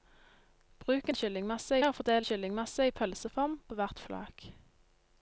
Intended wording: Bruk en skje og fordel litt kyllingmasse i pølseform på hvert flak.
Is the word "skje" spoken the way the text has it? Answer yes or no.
no